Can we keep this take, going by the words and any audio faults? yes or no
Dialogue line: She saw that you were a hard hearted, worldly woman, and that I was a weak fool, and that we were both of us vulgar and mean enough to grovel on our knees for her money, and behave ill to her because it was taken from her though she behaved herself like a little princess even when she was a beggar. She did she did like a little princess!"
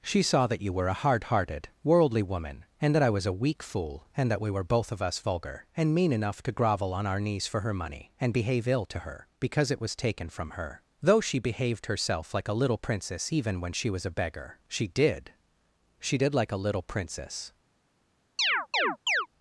no